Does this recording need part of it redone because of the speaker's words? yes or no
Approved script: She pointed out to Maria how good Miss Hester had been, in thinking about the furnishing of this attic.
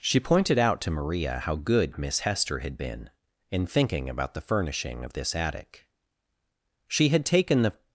yes